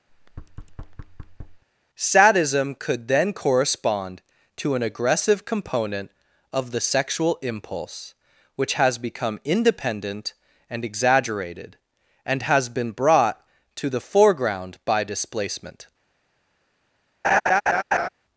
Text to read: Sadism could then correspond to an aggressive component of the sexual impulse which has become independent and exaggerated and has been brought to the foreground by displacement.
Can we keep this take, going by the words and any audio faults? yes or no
no